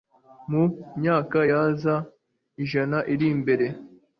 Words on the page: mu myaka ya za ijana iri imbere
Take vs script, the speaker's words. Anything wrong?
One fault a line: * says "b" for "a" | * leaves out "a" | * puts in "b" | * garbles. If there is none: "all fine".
all fine